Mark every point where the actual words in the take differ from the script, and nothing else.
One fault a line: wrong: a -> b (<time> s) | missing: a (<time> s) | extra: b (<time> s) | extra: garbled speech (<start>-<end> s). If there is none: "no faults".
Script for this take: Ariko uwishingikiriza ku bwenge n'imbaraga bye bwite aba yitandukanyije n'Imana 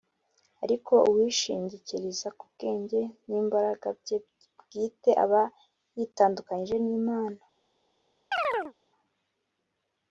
no faults